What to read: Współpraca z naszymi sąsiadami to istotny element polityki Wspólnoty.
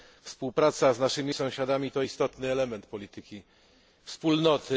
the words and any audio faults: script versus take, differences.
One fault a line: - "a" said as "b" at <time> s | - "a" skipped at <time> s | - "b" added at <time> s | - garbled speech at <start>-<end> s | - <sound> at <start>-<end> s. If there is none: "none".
none